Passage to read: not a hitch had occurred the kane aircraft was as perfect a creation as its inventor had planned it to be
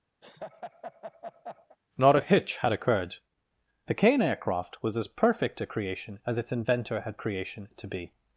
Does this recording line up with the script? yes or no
no